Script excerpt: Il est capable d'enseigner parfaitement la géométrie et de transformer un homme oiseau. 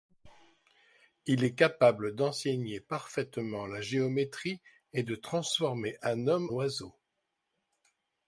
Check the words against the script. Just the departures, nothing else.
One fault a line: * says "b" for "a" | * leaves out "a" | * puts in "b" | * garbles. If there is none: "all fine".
all fine